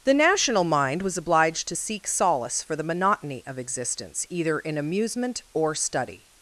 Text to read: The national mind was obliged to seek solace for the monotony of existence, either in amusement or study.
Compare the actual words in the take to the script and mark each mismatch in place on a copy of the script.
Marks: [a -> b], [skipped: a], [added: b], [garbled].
The national mind was obliged to seek solace for the monotony of existence, either in amusement or study.